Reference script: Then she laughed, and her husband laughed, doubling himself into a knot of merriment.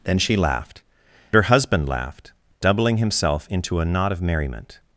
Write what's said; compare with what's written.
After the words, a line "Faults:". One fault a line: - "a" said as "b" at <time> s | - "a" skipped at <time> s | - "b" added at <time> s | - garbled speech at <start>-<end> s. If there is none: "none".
Then she laughed, her husband laughed, doubling himself into a knot of merriment.
Faults:
- "and" skipped at 0.8 s